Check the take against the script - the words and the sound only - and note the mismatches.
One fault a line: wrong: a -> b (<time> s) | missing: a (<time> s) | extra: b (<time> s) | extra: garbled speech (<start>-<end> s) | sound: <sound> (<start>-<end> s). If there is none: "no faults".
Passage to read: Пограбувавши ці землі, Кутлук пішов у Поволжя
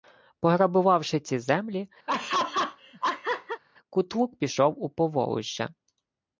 sound: laugh (2.1-3.6 s)